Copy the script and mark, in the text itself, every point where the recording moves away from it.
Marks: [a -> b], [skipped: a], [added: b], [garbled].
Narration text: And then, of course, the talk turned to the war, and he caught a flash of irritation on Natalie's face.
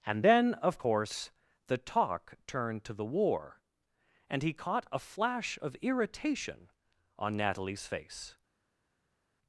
And then, of course, the talk turned to the war, and he caught a flash of irritation on Natalie's face.